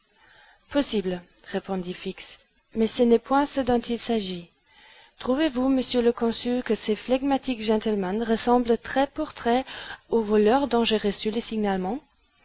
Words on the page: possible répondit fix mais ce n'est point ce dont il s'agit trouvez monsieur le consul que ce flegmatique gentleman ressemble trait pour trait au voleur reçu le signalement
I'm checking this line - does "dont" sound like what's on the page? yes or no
yes